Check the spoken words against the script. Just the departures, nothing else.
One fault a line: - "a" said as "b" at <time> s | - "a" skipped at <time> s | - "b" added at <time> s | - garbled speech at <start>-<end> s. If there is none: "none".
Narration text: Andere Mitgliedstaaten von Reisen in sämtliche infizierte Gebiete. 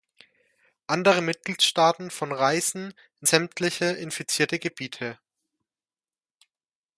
none